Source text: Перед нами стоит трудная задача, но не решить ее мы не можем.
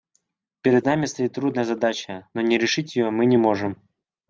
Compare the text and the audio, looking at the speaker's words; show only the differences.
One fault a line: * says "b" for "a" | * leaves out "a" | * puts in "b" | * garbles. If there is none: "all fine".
all fine